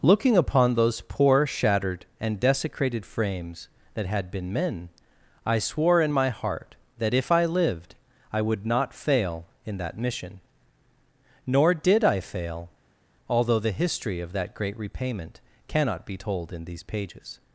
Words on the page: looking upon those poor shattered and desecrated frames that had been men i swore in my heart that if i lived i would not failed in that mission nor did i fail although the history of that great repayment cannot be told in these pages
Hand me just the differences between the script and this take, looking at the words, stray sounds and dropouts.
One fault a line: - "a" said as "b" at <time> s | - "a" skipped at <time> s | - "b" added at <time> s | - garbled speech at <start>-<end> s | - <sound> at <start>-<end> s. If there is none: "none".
- "failed" said as "fail" at 8.9 s